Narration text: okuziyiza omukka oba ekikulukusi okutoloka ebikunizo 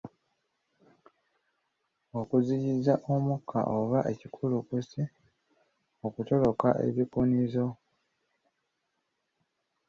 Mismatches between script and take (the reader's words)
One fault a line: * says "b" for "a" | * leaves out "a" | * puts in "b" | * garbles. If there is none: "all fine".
all fine